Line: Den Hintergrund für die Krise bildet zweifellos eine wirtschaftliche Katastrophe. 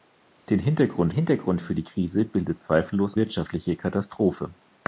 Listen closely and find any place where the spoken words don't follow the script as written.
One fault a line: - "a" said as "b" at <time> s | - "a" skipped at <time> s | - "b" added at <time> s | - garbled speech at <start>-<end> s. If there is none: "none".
- "Hintergrund" added at 1.1 s
- "eine" skipped at 3.2 s